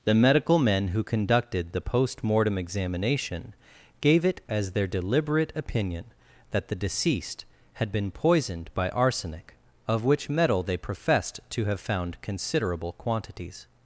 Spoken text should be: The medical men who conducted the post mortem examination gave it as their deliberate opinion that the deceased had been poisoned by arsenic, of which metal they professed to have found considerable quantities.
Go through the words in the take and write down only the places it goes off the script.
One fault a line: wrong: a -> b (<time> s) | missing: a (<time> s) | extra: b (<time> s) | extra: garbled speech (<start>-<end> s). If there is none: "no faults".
no faults